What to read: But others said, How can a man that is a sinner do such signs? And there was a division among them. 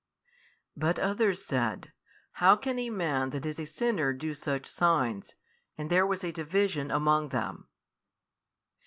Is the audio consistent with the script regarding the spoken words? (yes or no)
yes